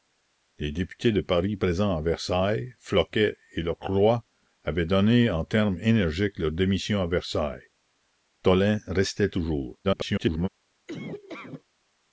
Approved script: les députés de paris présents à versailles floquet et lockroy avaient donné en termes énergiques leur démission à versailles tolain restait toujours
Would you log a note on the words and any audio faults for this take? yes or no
yes